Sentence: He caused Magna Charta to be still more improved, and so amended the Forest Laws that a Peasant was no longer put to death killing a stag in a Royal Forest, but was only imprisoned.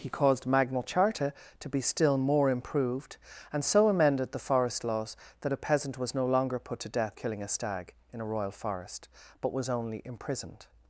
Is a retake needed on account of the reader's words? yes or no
no